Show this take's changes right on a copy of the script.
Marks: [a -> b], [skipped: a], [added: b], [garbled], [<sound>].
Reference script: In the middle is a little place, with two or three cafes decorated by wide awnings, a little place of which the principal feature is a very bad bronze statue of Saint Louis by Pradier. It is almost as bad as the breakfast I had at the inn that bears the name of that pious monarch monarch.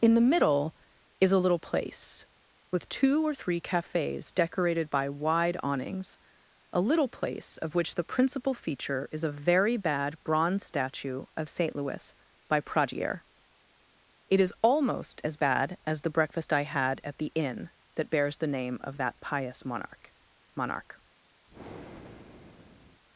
In the middle is a little place, with two or three cafes decorated by wide awnings, a little place of which the principal feature is a very bad bronze statue of Saint Louis by Pradier. It is almost as bad as the breakfast I had at the inn that bears the name of that pious monarch monarch. [breath]